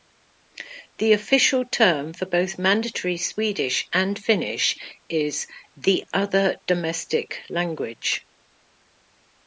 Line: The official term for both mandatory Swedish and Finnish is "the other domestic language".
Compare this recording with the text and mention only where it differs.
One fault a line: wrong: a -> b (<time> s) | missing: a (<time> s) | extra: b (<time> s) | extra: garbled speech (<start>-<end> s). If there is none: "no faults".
no faults